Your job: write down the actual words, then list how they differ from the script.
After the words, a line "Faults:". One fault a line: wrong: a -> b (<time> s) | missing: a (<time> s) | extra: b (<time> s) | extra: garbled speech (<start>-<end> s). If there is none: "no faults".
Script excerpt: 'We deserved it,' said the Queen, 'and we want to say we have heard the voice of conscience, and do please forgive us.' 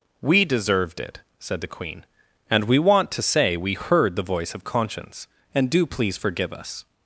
'We deserved it,' said the Queen, 'and we want to say we heard the voice of conscience, and do please forgive us.'
Faults:
missing: have (3.8 s)